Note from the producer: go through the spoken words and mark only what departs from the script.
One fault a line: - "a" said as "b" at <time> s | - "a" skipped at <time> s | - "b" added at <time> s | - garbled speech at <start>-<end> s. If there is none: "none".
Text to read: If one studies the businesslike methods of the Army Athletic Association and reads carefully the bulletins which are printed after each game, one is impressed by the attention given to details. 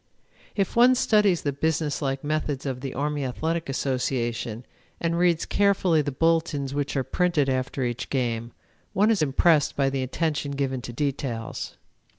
none